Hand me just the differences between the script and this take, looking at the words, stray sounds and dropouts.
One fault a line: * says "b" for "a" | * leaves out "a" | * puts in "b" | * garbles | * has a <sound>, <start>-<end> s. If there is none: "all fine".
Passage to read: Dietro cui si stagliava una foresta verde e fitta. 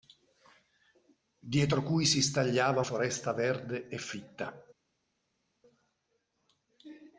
* leaves out "una"